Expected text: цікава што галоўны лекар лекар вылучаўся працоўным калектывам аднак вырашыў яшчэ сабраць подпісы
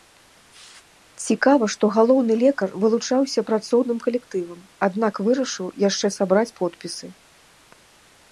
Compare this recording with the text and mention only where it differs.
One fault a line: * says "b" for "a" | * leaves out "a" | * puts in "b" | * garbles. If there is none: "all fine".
* leaves out "лекар"